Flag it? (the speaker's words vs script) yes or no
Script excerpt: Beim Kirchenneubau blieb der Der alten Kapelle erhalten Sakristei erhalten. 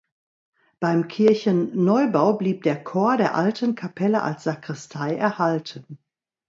yes